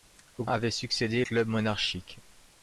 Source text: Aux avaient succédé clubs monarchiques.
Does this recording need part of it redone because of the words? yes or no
no